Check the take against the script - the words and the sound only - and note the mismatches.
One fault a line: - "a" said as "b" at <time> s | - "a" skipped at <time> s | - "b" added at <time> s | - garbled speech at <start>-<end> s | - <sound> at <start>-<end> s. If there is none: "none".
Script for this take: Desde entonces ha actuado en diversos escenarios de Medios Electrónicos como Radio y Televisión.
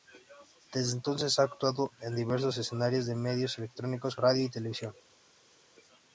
- "como" skipped at 4.2 s